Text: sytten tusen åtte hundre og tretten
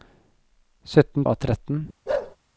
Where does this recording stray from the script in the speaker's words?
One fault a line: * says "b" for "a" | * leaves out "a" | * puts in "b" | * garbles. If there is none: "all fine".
* leaves out "tusen åtte hundre"